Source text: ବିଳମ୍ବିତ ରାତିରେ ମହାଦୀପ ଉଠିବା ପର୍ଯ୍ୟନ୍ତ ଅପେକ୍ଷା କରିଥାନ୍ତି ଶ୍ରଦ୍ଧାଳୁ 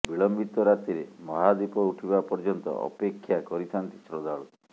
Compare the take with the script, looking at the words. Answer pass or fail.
pass